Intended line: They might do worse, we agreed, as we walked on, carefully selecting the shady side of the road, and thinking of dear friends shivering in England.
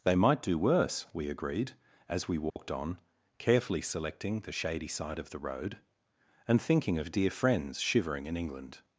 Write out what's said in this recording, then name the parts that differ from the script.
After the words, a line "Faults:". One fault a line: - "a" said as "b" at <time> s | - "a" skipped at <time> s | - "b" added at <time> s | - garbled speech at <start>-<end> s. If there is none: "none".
They might do worse, we agreed, as we walked on, carefully selecting the shady side of the road, and thinking of dear friends shivering in England.
Faults:
none